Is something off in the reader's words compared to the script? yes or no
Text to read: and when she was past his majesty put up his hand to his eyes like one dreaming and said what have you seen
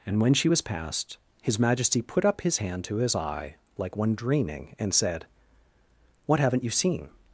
yes